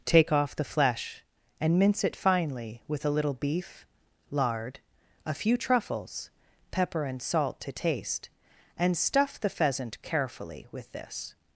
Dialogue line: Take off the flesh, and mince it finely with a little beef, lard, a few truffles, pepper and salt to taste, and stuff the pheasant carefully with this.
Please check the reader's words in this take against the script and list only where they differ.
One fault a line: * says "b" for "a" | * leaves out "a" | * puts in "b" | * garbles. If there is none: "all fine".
all fine